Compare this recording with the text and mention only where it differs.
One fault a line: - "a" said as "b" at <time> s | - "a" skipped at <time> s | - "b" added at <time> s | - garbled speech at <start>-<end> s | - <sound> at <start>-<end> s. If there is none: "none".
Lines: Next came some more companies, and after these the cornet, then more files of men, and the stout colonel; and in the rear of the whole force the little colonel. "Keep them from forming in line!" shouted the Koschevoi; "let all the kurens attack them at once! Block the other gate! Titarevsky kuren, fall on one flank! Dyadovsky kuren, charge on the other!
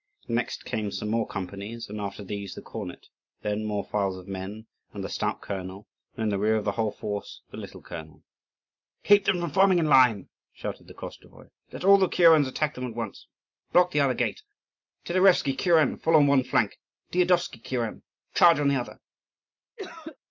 - cough at 19.8-20.2 s